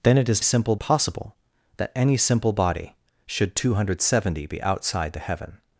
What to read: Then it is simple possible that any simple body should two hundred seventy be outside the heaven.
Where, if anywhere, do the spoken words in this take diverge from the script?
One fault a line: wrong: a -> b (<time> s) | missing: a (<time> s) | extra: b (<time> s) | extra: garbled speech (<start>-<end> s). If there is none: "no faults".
no faults